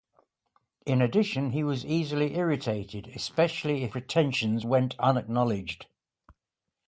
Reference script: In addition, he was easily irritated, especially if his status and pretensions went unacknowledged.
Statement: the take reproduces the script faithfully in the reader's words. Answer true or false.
false